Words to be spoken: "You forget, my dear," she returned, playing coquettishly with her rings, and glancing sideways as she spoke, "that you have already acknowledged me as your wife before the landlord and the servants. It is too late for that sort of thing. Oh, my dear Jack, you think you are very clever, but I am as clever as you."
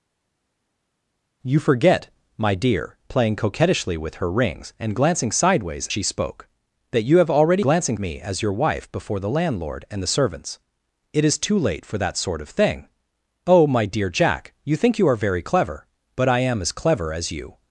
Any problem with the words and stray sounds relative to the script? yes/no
yes